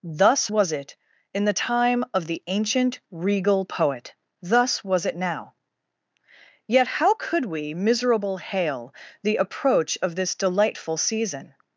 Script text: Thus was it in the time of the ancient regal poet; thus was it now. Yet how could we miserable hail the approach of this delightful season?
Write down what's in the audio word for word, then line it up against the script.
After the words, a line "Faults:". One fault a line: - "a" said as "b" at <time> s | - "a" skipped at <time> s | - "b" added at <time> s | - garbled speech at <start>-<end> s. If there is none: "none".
Thus was it in the time of the ancient regal poet; thus was it now. Yet how could we miserable hail the approach of this delightful season?
Faults:
none